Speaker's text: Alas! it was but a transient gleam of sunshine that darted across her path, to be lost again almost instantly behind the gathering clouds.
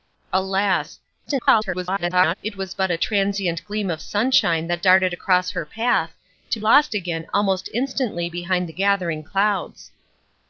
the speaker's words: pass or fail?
fail